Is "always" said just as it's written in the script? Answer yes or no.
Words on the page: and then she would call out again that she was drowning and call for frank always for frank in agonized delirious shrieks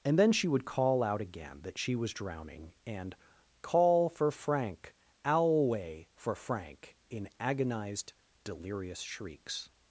no